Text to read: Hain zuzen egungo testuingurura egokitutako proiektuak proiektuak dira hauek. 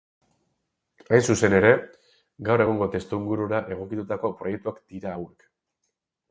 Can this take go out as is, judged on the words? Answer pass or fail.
fail